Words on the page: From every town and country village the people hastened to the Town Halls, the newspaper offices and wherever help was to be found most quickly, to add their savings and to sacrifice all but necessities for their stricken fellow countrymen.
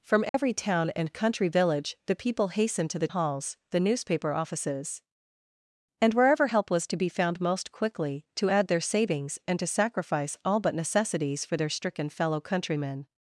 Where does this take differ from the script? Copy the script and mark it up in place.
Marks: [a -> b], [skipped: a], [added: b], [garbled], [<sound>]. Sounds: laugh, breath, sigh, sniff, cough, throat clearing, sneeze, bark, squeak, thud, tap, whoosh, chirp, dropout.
From every [dropout] town and country village the people hastened to the [skipped: Town] Halls, the newspaper offices and wherever help was to be found most quickly, to add their savings and to sacrifice all but necessities for their stricken fellow countrymen.